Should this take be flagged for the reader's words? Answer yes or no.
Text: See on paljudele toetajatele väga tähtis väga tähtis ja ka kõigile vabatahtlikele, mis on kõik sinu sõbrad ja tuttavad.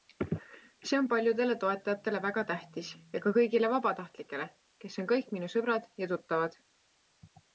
yes